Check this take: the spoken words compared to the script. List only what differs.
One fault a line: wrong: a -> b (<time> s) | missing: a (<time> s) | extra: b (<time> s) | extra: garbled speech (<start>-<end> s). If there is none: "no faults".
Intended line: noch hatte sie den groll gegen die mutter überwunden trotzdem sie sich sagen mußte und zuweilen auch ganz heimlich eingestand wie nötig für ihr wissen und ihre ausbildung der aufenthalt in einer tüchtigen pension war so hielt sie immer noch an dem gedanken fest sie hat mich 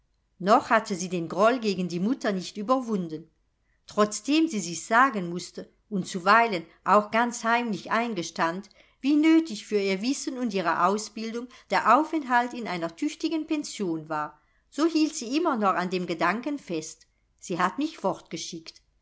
extra: nicht (2.3 s)